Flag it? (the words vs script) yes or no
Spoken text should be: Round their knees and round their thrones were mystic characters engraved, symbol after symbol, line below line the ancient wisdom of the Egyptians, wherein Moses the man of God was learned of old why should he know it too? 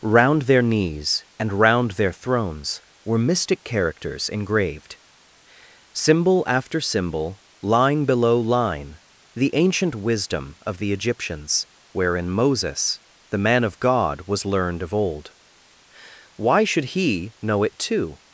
no